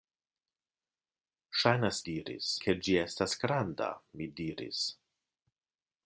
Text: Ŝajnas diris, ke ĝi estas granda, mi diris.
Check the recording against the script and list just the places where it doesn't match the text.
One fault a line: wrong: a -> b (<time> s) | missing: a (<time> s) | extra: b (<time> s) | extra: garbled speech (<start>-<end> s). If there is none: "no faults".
no faults